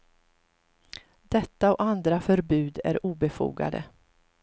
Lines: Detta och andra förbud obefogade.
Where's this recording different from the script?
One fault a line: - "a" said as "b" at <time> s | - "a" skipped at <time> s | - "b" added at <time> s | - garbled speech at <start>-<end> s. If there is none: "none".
- "är" added at 2.8 s